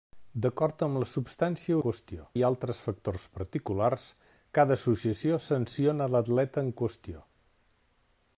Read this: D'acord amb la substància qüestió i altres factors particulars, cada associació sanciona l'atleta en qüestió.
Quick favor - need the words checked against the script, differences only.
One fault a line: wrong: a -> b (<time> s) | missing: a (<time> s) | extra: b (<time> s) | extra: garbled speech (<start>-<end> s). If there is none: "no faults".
no faults